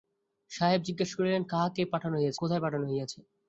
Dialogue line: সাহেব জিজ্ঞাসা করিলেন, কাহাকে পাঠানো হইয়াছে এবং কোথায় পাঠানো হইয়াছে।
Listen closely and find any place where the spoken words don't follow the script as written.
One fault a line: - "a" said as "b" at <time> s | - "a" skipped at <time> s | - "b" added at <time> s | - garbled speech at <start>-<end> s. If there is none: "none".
- "এবং" skipped at 2.4 s